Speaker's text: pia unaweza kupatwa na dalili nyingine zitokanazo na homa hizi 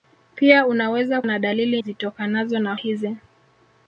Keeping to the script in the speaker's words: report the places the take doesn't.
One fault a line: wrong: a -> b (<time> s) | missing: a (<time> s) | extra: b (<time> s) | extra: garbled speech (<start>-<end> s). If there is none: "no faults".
missing: kupatwa (1.2 s)
missing: nyingine (1.8 s)
missing: homa (2.7 s)